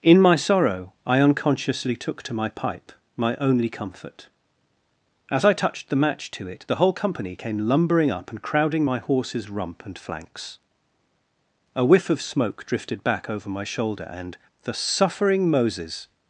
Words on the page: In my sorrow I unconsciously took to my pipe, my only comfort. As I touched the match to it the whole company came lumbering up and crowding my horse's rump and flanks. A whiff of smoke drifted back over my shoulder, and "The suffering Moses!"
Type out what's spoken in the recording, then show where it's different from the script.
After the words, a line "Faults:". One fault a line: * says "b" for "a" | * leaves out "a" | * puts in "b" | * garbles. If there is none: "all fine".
In my sorrow I unconsciously took to my pipe, my only comfort. As I touched the match to it the whole company came lumbering up and crowding my horse's rump and flanks. A whiff of smoke drifted back over my shoulder, and "The suffering Moses!"
Faults:
all fine